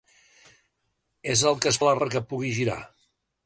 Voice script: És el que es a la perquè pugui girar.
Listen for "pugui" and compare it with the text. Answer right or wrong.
right